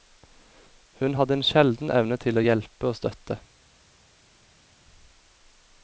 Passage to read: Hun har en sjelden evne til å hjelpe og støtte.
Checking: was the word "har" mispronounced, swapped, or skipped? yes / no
yes